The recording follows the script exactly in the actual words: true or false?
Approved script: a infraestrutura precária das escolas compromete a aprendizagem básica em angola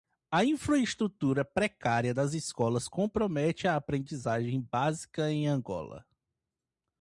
true